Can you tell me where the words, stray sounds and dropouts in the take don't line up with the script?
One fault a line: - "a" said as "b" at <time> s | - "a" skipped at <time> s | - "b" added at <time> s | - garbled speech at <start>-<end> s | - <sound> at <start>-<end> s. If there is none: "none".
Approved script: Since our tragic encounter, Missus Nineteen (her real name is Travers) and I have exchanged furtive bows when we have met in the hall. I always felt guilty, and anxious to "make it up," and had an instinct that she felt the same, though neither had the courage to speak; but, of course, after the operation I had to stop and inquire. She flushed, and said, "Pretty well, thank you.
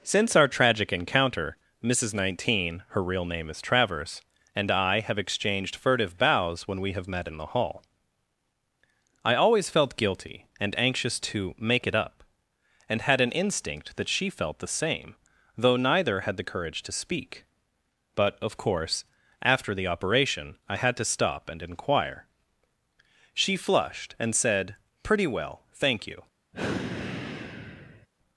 - sigh at 26.5-28.1 s